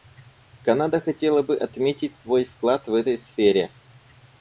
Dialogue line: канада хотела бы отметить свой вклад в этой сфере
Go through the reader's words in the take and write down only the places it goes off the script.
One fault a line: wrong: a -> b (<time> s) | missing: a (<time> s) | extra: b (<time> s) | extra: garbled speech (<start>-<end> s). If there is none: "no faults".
no faults